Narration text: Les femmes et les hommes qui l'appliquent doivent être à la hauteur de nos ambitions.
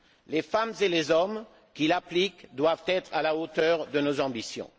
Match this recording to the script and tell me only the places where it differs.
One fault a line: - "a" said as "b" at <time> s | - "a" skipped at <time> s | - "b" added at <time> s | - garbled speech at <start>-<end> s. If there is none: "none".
none